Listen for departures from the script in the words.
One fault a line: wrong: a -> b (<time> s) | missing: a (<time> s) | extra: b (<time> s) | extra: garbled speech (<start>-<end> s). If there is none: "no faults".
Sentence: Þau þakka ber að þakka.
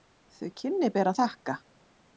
wrong: þakka -> kynni (0.6 s)